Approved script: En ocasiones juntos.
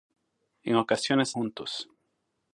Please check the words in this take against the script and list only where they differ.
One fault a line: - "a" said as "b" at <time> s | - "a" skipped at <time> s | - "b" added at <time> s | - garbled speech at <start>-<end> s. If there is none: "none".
none